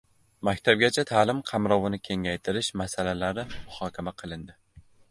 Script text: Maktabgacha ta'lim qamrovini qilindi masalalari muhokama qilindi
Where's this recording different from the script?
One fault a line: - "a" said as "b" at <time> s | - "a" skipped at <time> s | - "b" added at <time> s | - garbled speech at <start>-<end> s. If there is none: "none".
- "qilindi" said as "kengaytirish" at 2.1 s